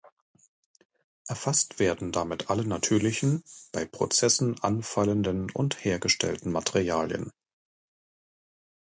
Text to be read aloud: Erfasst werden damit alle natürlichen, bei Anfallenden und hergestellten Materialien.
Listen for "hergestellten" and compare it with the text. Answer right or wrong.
right